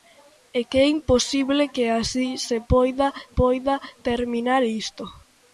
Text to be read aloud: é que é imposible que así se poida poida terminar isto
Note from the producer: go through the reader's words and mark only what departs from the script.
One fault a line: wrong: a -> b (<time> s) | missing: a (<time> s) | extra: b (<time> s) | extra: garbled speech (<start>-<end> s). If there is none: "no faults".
no faults